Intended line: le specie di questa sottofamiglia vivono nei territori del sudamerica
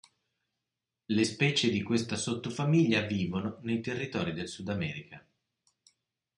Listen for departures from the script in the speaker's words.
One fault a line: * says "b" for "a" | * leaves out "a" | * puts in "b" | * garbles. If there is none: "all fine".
all fine